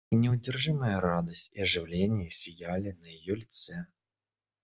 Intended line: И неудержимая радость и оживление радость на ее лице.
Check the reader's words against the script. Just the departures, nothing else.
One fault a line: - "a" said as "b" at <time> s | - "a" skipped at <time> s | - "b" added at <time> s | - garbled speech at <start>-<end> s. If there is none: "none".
- "радость" said as "сияли" at 2.3 s